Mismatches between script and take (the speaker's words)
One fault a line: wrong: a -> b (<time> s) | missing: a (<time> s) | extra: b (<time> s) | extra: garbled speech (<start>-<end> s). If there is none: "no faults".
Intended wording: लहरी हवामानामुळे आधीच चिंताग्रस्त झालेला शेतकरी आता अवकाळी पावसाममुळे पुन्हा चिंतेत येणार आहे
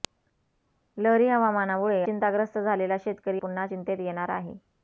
missing: आधीच (2.0 s)
missing: आता अवकाळी पावसाममुळे (3.4 s)